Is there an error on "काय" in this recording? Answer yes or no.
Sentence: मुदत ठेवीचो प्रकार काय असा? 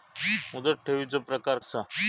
yes